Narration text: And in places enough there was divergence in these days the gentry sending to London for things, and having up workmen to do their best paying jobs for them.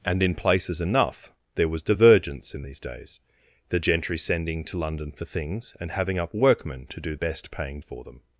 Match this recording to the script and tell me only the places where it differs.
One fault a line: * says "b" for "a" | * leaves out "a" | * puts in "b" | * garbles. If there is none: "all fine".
* leaves out "their"
* leaves out "jobs"